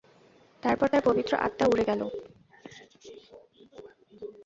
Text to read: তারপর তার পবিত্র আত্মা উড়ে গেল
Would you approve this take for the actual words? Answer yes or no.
yes